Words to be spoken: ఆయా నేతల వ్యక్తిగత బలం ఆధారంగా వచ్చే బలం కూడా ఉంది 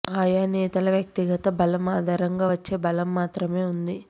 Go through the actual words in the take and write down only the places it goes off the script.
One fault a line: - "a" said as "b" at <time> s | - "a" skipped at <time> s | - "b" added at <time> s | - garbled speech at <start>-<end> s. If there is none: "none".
- "కూడా" said as "మాత్రమే" at 3.1 s